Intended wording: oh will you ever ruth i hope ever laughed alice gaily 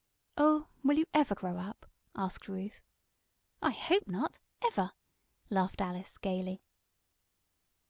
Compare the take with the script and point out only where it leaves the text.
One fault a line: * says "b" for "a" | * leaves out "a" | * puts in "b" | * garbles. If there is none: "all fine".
* puts in "grow up asked"
* puts in "not"